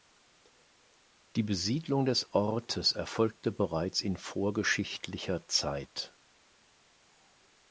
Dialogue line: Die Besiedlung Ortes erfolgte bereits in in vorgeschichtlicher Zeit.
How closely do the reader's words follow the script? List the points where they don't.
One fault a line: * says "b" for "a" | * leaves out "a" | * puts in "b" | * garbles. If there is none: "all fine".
* puts in "des"
* leaves out "in"